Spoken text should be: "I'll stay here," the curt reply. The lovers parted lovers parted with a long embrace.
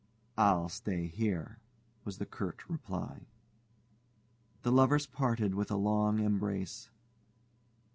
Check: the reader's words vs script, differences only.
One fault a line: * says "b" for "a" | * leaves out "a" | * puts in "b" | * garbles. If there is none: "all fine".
* puts in "was"
* leaves out "lovers parted"